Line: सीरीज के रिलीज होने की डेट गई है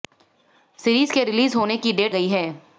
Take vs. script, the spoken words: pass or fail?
pass